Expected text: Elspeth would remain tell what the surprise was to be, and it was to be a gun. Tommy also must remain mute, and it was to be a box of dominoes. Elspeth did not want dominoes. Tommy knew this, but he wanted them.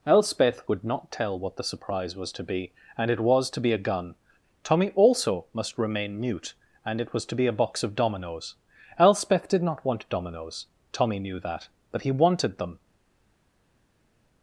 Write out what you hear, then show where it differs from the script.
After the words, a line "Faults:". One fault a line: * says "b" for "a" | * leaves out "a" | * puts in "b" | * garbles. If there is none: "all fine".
Elspeth would not tell what the surprise was to be, and it was to be a gun. Tommy also must remain mute, and it was to be a box of dominoes. Elspeth did not want dominoes. Tommy knew that, but he wanted them.
Faults:
* says "not" for "remain"
* says "that" for "this"